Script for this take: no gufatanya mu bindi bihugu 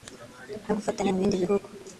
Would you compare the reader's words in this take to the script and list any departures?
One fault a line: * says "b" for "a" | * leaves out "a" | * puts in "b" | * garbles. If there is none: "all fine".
all fine